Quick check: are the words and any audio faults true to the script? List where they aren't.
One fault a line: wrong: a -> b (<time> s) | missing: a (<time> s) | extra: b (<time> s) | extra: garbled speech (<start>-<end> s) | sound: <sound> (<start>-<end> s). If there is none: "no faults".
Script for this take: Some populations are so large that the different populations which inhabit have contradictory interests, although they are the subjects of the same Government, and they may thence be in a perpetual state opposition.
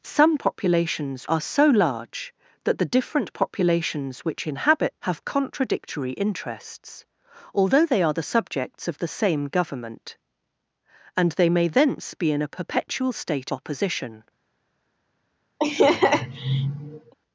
sound: laugh (15.6-17.1 s)